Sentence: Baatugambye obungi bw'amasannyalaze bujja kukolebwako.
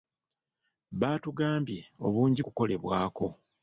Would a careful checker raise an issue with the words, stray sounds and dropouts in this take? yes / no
yes